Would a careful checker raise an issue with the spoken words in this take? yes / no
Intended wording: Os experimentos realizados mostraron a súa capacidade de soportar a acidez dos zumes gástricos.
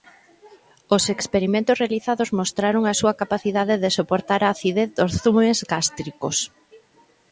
no